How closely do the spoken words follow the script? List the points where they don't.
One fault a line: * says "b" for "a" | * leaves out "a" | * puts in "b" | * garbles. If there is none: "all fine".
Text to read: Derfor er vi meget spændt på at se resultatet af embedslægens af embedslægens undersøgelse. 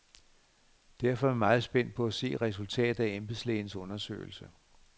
* leaves out "af embedslægens"